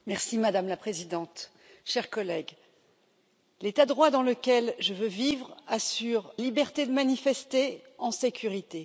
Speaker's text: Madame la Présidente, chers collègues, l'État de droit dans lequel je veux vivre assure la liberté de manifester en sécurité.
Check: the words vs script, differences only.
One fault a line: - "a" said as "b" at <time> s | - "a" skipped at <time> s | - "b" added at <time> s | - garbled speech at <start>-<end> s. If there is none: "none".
- "de" skipped at 3.9 s
- "la" skipped at 6.3 s